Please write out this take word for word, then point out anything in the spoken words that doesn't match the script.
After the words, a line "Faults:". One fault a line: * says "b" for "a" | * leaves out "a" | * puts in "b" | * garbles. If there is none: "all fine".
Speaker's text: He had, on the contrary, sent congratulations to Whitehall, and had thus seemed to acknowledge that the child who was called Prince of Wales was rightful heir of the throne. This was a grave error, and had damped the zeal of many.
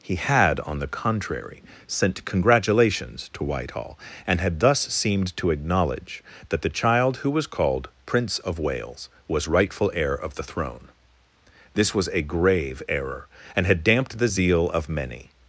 He had, on the contrary, sent congratulations to Whitehall, and had thus seemed to acknowledge that the child who was called Prince of Wales was rightful heir of the throne. This was a grave error, and had damped the zeal of many.
Faults:
all fine